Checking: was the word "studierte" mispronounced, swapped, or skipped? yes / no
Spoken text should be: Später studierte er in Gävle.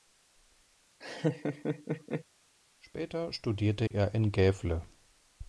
no